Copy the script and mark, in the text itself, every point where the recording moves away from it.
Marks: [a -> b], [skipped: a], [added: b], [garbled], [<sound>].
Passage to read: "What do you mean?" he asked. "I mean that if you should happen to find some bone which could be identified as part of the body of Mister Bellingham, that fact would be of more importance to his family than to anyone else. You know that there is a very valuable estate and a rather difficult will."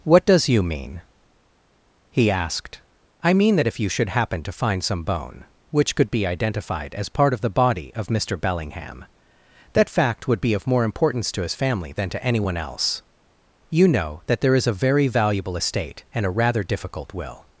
"What [do -> does] you mean?" he asked. "I mean that if you should happen to find some bone which could be identified as part of the body of Mister Bellingham, that fact would be of more importance to his family than to anyone else. You know that there is a very valuable estate and a rather difficult will."